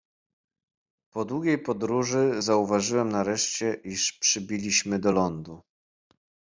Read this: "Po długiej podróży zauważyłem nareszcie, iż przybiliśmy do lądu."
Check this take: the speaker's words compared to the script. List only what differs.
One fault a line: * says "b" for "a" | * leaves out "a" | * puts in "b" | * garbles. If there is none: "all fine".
all fine